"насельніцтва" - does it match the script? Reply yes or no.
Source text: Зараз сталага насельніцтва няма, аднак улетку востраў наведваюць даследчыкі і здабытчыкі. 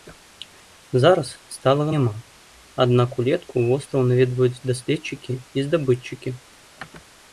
no